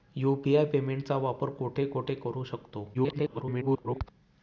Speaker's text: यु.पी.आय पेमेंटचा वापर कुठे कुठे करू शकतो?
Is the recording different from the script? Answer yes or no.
yes